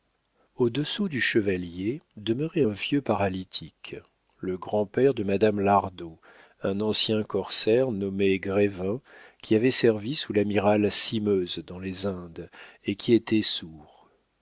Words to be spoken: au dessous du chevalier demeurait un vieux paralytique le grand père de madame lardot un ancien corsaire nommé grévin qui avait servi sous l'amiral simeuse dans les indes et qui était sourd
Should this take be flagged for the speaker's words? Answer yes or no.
no